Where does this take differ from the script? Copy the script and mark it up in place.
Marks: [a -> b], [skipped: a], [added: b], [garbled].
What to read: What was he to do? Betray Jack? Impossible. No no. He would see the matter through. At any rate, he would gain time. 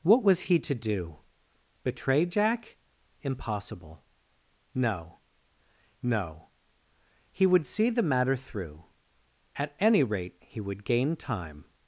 What was he to do? Betray Jack? Impossible. No no. He would see the matter through. At any rate, he would gain time.